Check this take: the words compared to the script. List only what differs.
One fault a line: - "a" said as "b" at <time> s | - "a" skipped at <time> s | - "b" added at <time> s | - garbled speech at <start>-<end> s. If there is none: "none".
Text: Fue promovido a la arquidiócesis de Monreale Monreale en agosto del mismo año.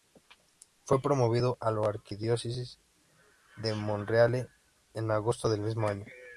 - "Monreale" skipped at 4.5 s